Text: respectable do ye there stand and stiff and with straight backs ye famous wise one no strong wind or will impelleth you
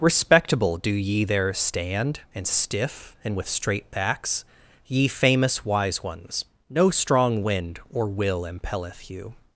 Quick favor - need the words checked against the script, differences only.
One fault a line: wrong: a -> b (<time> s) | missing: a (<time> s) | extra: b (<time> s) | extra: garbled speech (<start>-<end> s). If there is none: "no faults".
wrong: one -> ones (6.0 s)